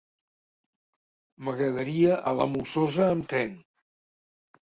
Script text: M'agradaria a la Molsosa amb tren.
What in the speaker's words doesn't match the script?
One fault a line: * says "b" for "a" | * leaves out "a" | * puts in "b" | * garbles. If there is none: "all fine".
all fine